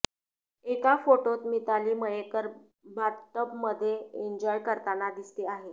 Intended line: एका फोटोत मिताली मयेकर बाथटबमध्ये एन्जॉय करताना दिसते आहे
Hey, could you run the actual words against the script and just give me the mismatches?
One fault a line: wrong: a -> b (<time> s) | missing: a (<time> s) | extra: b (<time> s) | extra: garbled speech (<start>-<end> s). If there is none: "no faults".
no faults